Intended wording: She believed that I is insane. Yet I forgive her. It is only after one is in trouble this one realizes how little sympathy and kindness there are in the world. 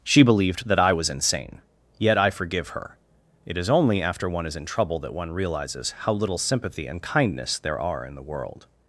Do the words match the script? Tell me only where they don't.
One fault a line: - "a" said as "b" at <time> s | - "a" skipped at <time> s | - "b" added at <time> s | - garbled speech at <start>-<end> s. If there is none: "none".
- "is" said as "was" at 0.9 s
- "this" said as "that" at 5.0 s